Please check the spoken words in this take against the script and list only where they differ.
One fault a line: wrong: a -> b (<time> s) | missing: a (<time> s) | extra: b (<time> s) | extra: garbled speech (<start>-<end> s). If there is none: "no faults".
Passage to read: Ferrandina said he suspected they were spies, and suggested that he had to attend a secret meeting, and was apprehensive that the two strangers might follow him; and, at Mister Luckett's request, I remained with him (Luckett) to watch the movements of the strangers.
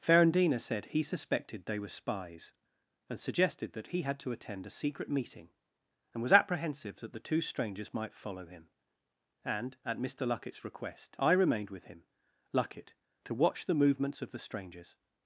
no faults